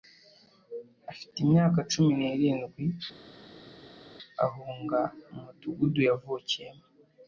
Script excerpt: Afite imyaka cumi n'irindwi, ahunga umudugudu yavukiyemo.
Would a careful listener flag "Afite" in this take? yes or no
no